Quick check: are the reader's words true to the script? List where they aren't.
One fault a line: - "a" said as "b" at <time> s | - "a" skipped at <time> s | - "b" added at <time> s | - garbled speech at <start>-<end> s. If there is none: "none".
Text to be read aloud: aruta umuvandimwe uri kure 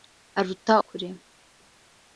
- "umuvandimwe uri" skipped at 0.7 s